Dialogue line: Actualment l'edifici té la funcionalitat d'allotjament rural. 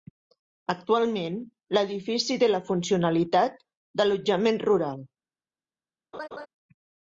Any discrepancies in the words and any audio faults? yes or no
yes